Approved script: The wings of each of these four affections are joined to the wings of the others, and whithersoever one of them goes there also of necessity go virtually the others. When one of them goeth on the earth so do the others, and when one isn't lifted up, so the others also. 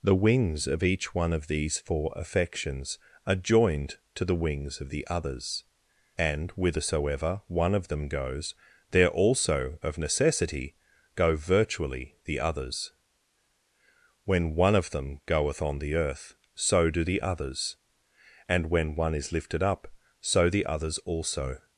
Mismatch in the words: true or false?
true